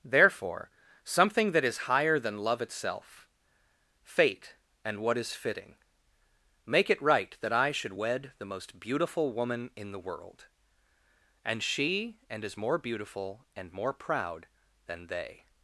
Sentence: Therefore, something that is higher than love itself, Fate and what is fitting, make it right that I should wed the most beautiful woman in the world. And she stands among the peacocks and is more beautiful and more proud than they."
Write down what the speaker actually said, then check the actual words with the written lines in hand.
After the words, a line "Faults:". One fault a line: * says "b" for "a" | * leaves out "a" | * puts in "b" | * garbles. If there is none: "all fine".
Therefore, something that is higher than love itself, Fate and what is fitting, make it right that I should wed the most beautiful woman in the world. And she and is more beautiful and more proud than they."
Faults:
* leaves out "stands among the peacocks"